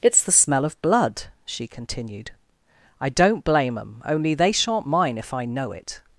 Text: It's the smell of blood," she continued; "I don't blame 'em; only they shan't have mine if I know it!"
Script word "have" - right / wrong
wrong